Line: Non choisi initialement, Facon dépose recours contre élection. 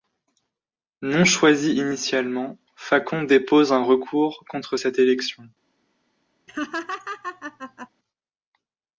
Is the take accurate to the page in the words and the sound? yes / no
no